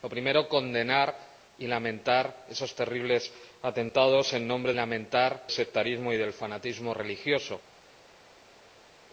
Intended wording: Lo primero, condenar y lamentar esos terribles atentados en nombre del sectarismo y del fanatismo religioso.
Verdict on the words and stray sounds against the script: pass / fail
fail